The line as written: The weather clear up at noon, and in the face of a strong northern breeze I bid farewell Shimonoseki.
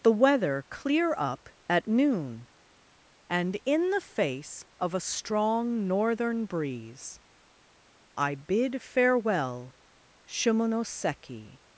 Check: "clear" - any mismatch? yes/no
no